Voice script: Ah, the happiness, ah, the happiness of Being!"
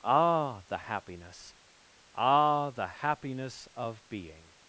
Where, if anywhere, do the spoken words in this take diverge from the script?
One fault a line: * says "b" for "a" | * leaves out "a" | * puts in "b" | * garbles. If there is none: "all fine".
all fine